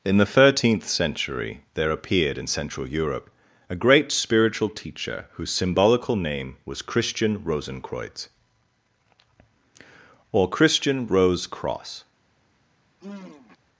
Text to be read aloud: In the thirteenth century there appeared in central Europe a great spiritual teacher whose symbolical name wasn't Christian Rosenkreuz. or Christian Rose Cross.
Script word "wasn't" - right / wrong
wrong